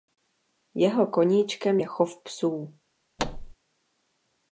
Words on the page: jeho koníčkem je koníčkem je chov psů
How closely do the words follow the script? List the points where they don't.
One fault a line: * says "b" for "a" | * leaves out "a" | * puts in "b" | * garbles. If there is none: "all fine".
* leaves out "koníčkem je"